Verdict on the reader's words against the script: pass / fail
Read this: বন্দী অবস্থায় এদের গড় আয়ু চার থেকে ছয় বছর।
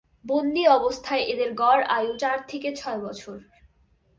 pass